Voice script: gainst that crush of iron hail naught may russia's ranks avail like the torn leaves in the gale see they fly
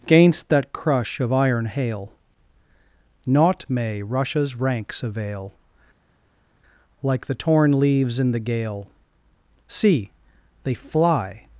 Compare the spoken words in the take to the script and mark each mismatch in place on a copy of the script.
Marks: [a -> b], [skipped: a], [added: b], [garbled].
gainst that crush of iron hail naught may russia's ranks avail like the torn leaves in the gale see they fly